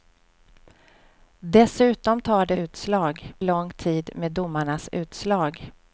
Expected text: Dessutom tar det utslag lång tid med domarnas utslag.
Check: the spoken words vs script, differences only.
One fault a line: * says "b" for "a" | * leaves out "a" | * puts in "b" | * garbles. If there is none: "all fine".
all fine